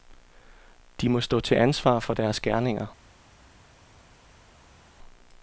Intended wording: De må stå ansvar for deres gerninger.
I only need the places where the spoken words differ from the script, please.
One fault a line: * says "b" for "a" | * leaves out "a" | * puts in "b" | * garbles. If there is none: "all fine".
* puts in "til"